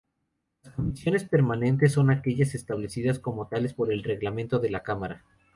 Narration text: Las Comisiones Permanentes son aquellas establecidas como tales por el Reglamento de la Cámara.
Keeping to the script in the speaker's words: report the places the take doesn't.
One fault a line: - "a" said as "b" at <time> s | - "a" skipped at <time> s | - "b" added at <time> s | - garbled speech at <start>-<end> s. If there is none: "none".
none